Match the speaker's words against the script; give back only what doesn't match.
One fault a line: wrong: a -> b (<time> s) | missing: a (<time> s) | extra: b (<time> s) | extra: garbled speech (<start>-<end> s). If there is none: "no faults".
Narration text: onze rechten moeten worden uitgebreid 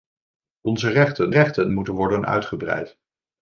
extra: rechten (1.3 s)